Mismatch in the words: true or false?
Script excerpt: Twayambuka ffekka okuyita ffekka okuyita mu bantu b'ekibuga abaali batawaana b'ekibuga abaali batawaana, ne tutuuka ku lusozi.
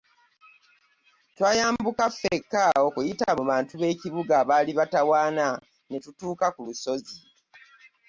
true